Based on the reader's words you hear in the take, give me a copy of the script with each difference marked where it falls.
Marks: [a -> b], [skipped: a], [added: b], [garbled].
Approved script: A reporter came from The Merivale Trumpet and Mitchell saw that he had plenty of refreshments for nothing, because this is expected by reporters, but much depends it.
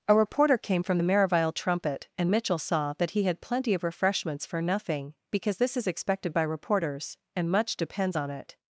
A reporter came from The Merivale Trumpet and Mitchell saw that he had plenty of refreshments for nothing, because this is expected by reporters, [but -> and] much depends [added: on] it.